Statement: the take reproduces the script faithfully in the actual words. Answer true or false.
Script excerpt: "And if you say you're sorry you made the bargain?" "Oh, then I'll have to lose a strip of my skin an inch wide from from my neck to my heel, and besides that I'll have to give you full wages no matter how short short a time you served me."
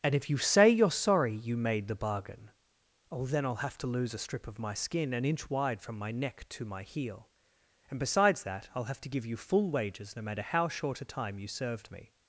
false